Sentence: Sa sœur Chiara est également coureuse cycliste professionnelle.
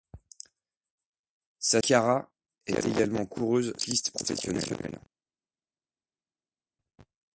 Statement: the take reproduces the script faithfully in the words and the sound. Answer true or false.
false